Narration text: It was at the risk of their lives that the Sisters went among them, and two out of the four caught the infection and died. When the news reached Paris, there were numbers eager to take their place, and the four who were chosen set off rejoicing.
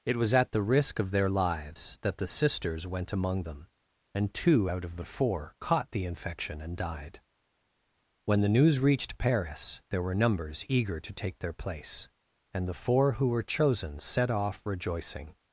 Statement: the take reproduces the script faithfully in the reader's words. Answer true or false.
true